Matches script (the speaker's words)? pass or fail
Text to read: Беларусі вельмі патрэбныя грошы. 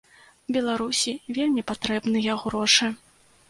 pass